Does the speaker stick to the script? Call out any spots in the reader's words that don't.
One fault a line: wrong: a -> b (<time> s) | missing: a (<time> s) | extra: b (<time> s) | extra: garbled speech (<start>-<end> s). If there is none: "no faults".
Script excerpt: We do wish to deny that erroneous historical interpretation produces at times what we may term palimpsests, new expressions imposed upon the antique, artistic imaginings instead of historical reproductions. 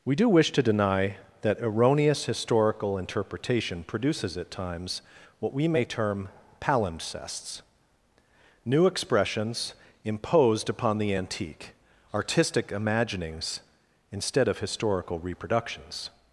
no faults